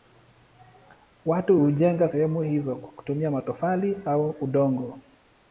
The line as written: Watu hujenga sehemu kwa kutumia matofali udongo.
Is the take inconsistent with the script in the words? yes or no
yes